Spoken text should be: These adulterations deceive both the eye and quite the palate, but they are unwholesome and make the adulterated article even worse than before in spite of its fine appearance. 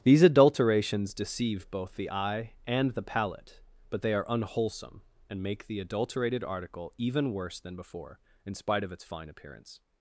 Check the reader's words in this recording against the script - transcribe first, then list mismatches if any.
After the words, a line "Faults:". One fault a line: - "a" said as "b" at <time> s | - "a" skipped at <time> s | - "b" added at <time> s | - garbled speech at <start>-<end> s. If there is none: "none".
These adulterations deceive both the eye and the palate, but they are unwholesome and make the adulterated article even worse than before in spite of its fine appearance.
Faults:
- "quite" skipped at 2.9 s